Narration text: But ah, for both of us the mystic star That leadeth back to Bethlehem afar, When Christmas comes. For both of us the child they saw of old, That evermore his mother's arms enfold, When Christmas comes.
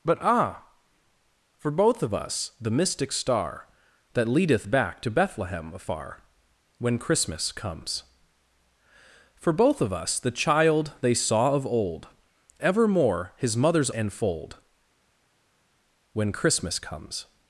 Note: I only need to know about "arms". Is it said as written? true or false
false